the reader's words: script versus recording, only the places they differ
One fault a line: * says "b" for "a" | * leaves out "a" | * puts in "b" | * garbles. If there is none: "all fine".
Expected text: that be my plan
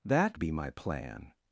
all fine